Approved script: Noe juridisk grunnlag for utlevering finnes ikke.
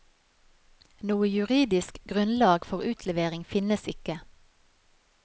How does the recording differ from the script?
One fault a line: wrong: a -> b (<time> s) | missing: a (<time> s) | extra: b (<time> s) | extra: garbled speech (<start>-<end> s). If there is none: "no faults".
no faults